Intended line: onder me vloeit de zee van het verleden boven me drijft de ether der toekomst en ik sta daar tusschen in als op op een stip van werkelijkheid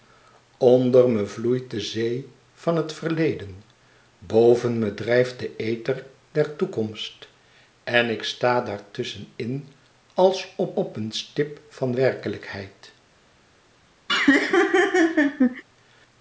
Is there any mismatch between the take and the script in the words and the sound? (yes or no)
yes